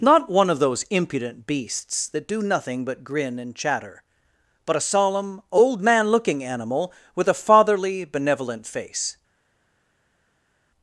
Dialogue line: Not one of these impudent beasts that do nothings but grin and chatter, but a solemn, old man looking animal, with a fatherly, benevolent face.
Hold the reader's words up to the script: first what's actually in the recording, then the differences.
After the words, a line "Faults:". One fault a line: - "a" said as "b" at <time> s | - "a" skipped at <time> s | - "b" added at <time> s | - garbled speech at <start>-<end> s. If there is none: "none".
Not one of those impudent beasts that do nothing but grin and chatter, but a solemn, old man looking animal, with a fatherly, benevolent face.
Faults:
- "these" said as "those" at 0.6 s
- "nothings" said as "nothing" at 2.4 s